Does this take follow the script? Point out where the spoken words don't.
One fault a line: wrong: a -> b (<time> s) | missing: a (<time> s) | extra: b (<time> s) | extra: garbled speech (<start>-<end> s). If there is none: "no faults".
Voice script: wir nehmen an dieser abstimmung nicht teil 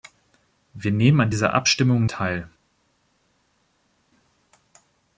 missing: nicht (2.1 s)